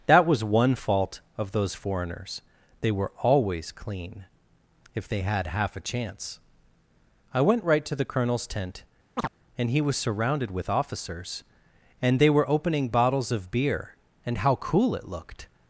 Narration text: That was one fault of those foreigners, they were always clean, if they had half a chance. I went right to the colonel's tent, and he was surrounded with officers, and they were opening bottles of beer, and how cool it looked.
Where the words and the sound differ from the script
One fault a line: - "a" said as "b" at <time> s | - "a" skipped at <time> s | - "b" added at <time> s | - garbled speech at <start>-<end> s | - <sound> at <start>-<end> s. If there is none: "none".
- chirp at 9.2-9.3 s